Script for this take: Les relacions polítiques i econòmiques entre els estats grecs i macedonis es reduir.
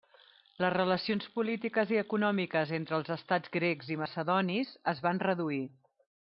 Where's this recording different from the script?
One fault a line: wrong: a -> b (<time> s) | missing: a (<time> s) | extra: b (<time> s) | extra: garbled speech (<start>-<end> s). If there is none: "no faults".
extra: van (5.1 s)